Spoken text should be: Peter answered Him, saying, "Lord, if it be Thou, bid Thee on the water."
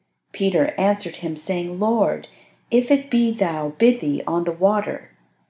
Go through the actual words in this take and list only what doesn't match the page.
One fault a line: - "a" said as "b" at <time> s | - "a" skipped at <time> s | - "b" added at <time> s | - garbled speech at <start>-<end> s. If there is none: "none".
none